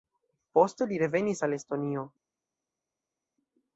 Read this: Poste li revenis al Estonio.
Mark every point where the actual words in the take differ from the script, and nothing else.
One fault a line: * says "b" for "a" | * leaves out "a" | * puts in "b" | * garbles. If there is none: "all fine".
all fine